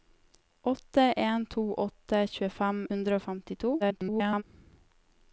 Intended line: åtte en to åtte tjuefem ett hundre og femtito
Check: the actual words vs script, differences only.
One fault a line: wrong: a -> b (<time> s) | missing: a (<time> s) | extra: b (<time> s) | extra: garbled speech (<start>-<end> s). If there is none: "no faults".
missing: ett (2.9 s)
extra: garbled speech (3.8-4.4 s)